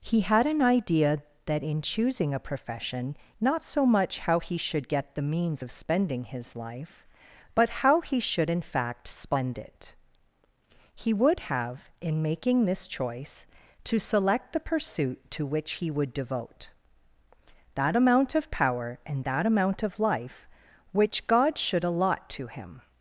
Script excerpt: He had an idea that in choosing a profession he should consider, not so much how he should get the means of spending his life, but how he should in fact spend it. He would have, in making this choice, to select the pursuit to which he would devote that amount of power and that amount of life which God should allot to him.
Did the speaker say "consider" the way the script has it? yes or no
no